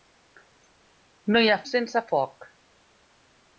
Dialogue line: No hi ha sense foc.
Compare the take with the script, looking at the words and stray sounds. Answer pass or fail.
pass